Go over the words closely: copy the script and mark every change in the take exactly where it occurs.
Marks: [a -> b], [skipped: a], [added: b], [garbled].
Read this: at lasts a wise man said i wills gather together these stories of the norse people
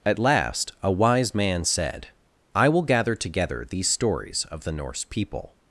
at [lasts -> last] a wise man said i [wills -> will] gather together these stories of the norse people